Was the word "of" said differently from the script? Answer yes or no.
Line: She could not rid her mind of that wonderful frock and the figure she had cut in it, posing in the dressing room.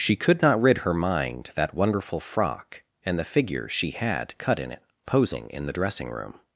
yes